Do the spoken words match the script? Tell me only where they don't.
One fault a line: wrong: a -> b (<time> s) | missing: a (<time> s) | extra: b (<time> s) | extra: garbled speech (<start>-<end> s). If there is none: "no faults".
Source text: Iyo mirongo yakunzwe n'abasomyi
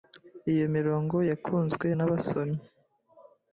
no faults